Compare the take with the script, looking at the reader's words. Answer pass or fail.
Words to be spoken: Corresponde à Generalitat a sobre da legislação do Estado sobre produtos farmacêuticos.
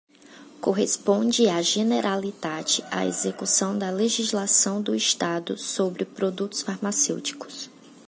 fail